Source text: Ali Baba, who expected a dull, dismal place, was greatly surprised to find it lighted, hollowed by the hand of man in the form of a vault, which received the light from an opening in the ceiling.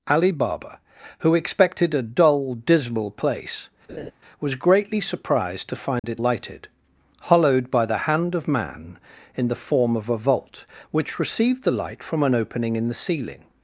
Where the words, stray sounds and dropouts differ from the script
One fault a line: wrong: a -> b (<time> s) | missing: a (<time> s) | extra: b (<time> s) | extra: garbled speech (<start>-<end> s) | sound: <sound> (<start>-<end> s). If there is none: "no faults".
sound: laugh (3.9-4.1 s)
sound: dropout (6.0-6.0 s)